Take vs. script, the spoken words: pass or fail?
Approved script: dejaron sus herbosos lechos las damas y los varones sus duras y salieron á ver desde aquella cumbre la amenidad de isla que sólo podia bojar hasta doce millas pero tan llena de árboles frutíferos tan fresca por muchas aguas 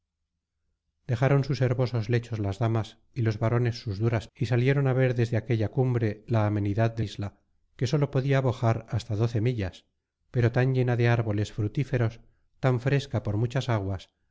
pass